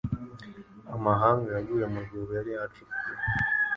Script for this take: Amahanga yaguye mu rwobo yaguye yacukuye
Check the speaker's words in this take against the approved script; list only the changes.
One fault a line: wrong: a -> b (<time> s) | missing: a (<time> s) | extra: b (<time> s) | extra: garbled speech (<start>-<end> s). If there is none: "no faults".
wrong: yaguye -> yari (2.4 s)